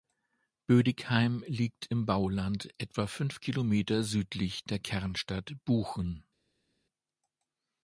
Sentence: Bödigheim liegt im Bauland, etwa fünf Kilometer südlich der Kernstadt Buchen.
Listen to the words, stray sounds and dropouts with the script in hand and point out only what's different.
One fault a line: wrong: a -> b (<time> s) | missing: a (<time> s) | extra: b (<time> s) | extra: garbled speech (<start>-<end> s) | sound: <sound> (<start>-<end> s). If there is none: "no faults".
no faults